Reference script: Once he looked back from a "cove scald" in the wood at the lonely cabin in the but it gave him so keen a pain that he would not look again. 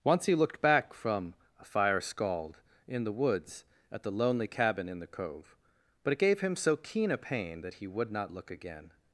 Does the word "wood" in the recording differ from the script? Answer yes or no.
yes